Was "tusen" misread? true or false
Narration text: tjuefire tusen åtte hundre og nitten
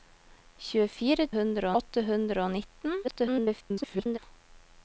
true